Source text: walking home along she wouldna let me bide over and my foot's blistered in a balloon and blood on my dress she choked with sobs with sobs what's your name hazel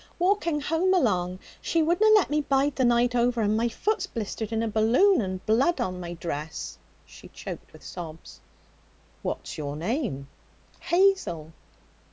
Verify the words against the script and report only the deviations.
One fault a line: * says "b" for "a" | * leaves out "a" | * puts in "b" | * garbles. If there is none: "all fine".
* puts in "the night"
* leaves out "with sobs"